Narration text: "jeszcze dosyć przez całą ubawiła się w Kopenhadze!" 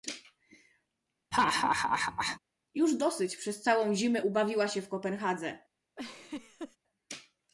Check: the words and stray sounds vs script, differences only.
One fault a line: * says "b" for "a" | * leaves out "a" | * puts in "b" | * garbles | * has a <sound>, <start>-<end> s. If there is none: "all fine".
* has a laugh, 1.3-2.4 s
* says "już" for "jeszcze"
* puts in "zimę"
* has a laugh, 6.0-6.8 s